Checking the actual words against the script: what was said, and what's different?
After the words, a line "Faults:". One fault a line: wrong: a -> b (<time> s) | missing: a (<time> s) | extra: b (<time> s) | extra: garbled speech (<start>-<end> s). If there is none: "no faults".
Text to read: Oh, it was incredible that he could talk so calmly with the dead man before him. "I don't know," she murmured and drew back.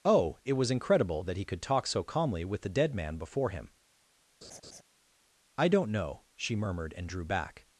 Oh, it was incredible that he could talk so calmly with the dead man before him. "I don't know," she murmured and drew back.
Faults:
no faults